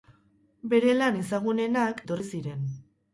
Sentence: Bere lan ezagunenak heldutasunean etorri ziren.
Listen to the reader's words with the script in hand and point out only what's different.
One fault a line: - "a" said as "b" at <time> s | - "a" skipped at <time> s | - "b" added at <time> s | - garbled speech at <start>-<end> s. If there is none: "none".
- "heldutasunean" skipped at 2.0 s